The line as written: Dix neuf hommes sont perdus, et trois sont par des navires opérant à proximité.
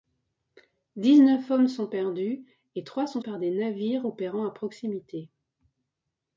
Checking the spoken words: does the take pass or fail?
pass